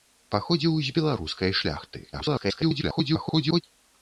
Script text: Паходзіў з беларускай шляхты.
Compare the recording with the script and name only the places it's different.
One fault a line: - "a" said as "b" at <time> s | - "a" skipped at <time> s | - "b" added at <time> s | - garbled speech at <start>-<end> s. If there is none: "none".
- garbled speech at 2.1-3.6 s